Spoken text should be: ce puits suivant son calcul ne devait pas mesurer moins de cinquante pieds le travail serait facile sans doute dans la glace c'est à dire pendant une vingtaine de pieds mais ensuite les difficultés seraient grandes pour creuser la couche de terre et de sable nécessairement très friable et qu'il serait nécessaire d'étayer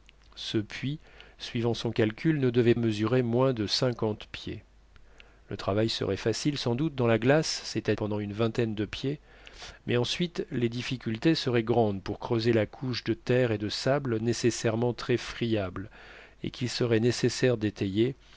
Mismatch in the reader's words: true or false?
true